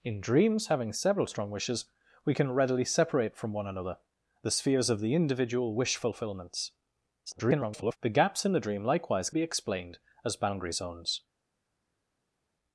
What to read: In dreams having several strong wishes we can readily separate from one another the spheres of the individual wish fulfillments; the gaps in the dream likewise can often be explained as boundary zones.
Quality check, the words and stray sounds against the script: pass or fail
fail